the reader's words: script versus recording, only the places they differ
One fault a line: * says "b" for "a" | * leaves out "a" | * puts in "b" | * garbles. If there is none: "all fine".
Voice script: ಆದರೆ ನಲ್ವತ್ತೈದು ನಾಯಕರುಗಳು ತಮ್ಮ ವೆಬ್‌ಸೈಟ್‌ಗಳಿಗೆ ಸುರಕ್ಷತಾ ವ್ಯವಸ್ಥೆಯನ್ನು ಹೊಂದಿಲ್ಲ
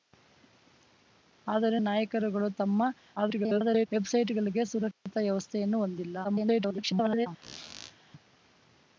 * leaves out "ನಲ್ವತ್ತೈದು"
* garbles
* garbles